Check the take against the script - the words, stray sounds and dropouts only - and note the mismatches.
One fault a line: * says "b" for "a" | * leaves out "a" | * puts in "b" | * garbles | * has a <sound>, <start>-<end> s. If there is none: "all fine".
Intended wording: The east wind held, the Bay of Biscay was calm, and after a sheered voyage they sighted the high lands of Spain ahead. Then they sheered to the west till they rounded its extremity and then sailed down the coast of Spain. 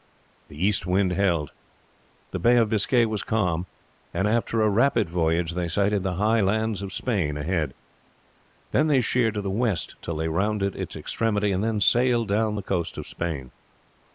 * says "rapid" for "sheered"